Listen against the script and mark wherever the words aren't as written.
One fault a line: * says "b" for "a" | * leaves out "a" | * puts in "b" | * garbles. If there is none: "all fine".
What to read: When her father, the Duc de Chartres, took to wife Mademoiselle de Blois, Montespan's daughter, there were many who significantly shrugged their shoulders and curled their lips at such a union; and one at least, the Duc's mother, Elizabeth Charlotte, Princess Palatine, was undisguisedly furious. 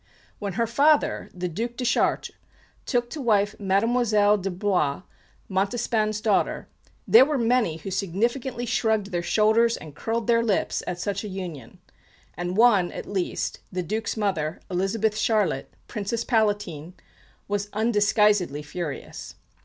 all fine